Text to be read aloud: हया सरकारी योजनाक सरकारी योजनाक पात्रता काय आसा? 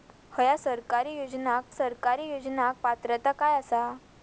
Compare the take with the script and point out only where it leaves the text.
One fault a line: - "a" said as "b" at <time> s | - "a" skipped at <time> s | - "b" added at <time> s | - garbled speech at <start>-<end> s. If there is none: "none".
none